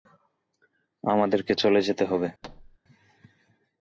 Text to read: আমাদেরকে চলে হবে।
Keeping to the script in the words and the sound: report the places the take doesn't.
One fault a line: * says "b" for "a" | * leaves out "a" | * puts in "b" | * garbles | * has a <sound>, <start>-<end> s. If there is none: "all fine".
* puts in "যেতে"
* has a thud, 2.4-2.8 s